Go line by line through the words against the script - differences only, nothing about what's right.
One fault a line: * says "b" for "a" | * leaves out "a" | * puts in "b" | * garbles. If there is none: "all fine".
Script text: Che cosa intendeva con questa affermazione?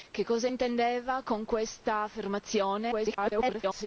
* garbles